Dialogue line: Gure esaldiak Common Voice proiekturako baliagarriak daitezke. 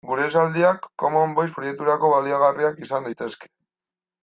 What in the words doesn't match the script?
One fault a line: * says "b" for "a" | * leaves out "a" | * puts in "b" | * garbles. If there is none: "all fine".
* puts in "izan"